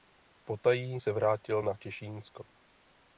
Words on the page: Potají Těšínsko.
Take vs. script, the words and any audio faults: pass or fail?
fail